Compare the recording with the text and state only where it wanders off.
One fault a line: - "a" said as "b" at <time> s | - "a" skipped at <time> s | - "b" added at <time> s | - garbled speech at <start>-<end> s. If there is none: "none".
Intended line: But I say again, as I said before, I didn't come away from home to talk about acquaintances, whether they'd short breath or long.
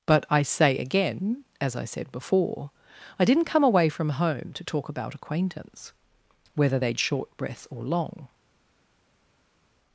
- "acquaintances" said as "acquaintance" at 5.1 s